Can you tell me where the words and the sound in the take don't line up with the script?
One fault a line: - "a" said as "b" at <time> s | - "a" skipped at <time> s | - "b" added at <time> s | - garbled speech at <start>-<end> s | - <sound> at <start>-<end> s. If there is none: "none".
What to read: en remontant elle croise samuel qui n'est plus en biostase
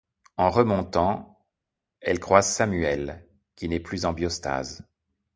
none